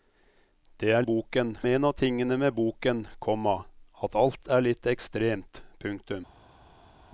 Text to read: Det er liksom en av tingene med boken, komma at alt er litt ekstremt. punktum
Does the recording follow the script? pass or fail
fail